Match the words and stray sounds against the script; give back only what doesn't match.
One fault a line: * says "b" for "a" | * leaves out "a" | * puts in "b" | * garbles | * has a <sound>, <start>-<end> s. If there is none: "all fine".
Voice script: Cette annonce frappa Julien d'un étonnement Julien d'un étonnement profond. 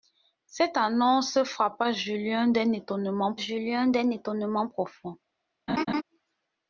* has a laugh, 5.7-6.0 s